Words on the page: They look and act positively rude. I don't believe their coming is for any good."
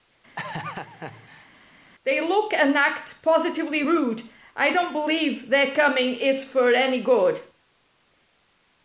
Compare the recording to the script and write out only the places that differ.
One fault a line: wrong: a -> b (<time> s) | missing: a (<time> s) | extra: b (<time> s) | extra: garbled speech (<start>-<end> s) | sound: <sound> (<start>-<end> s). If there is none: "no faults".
sound: laugh (0.4-1.5 s)